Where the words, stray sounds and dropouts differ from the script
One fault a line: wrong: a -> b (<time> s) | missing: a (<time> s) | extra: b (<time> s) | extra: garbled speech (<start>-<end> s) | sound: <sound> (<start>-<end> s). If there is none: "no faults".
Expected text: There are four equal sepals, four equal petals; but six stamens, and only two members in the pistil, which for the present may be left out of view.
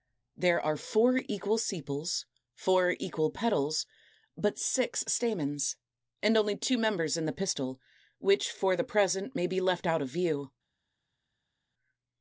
no faults